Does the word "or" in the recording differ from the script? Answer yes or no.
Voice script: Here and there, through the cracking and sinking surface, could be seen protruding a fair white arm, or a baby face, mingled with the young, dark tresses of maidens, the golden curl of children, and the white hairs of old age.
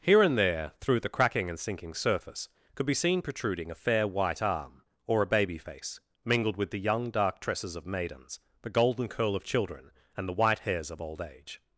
no